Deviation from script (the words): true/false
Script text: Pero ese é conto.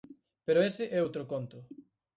true